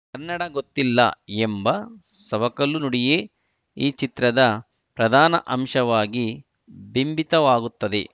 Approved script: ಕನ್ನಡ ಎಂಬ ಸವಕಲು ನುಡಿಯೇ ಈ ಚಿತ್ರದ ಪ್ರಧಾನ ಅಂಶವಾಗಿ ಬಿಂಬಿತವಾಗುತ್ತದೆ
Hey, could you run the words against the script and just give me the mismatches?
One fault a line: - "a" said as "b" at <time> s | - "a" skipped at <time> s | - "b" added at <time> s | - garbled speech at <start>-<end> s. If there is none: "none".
- "ಗೊತ್ತಿಲ್ಲ" added at 0.5 s